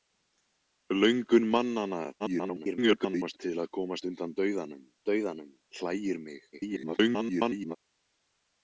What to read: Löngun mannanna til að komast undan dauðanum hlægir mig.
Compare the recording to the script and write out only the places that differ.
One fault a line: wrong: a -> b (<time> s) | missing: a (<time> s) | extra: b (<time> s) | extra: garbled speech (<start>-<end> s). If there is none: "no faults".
extra: garbled speech (2.2-3.4 s)
extra: dauðanum (5.1 s)
extra: garbled speech (6.5-7.8 s)